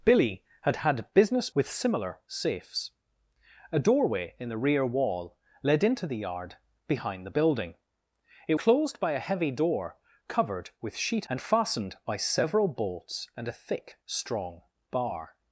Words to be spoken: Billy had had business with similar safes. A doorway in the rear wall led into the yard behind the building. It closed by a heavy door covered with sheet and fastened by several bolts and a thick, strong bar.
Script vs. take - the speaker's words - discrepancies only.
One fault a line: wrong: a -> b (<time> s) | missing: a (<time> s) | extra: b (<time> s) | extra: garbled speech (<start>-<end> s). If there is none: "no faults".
no faults